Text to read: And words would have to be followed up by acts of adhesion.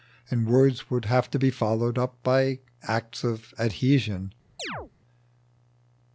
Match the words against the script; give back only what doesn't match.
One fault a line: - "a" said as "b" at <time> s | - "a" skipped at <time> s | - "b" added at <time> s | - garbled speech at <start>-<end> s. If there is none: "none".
none